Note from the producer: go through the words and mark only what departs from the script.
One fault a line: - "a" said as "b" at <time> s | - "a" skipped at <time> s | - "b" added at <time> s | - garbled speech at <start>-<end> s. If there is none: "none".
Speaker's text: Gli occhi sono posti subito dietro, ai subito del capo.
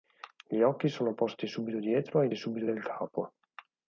none